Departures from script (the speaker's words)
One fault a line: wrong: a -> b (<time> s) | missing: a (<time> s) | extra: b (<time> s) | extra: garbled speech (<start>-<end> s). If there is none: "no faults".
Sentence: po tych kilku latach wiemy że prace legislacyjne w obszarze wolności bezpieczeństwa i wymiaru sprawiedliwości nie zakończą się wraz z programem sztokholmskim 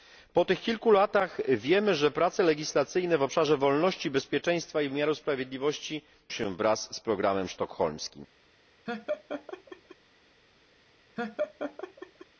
missing: nie zakończą (6.0 s)